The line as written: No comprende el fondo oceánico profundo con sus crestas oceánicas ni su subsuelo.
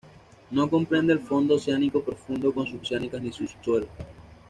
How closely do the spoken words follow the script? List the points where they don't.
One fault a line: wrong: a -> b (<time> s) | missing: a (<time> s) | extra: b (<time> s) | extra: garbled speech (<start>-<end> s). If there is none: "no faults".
missing: crestas (2.8 s)